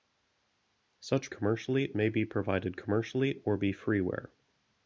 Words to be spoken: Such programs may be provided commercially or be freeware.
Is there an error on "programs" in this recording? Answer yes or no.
yes